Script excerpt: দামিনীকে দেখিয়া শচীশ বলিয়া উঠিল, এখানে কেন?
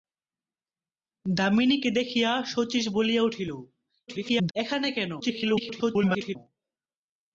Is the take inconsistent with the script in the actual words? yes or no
yes